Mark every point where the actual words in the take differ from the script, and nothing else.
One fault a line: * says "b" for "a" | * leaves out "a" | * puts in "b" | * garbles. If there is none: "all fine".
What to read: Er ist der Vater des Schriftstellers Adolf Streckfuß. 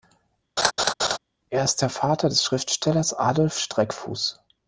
all fine